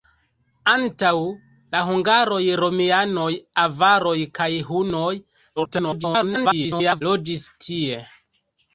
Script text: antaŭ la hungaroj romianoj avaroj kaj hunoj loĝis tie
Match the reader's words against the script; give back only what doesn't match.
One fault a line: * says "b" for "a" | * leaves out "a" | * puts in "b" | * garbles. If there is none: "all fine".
* garbles